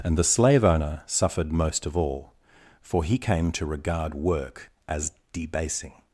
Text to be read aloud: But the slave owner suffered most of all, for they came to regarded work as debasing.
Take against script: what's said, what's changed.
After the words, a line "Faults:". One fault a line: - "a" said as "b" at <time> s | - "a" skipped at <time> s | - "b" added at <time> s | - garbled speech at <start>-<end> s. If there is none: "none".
And the slave owner suffered most of all, for he came to regard work as debasing.
Faults:
- "But" said as "And" at 0.0 s
- "they" said as "he" at 3.0 s
- "regarded" said as "regard" at 3.7 s